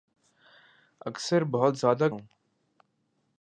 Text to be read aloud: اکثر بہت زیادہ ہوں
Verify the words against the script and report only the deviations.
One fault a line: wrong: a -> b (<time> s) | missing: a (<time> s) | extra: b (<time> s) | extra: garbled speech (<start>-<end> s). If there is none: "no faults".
no faults